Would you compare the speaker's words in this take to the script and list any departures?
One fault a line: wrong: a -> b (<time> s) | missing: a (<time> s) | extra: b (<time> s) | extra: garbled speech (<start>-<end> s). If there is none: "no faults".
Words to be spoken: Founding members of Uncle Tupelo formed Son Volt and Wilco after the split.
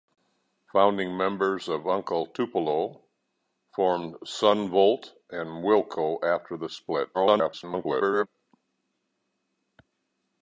extra: garbled speech (7.1-8.3 s)